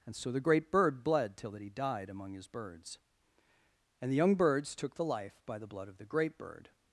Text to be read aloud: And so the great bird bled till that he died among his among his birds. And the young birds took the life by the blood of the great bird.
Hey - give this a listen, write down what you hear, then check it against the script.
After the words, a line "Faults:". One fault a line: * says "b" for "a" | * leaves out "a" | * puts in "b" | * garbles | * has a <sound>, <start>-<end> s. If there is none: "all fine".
And so the great bird bled till that he died among his birds. And the young birds took the life by the blood of the great bird.
Faults:
* leaves out "among his"